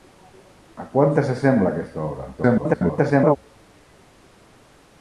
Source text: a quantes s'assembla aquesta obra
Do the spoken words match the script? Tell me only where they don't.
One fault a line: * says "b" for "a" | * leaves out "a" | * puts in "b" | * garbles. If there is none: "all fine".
* garbles